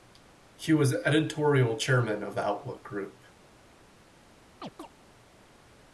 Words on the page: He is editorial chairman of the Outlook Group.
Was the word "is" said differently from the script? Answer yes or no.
yes